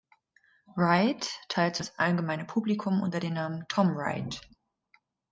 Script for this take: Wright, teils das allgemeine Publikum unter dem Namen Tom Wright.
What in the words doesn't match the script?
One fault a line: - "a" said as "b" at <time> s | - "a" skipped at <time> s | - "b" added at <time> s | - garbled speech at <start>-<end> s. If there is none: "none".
none